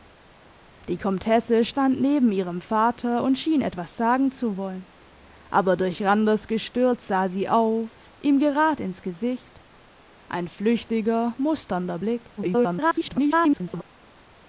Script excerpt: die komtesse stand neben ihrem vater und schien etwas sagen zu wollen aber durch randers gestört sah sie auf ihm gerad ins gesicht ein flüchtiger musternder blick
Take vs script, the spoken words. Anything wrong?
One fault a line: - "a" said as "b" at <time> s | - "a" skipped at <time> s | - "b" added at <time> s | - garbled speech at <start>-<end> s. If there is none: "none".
- garbled speech at 12.4-13.8 s